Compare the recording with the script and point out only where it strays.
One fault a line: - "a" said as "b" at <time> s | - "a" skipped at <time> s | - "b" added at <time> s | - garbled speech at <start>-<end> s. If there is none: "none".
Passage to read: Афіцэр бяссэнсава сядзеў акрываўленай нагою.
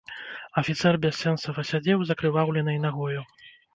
- "з" added at 2.1 s